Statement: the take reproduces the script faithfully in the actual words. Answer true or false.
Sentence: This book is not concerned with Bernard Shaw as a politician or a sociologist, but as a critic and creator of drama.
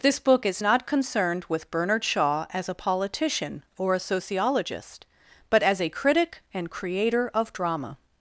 true